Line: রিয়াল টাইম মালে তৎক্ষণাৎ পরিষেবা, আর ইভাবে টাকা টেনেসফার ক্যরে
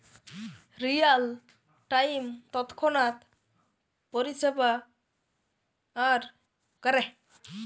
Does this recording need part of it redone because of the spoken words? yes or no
yes